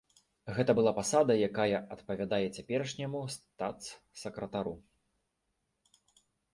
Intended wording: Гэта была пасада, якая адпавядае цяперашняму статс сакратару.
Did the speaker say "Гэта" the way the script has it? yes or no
yes